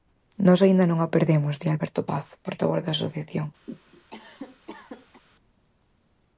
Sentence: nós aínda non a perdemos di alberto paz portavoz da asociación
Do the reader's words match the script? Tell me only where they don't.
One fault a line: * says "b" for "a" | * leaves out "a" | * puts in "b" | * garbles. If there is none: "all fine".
all fine